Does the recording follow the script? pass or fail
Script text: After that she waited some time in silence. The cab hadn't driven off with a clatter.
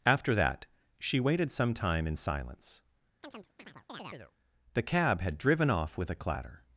fail